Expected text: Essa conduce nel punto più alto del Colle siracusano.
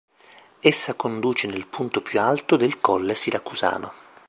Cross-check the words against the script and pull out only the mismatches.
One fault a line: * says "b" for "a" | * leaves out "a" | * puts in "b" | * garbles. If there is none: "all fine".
all fine